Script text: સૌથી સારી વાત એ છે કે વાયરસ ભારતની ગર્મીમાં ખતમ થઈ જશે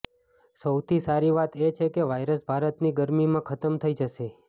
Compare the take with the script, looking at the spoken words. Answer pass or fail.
pass